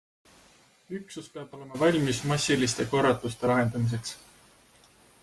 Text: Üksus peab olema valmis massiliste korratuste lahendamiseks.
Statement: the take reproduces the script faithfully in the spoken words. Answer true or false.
true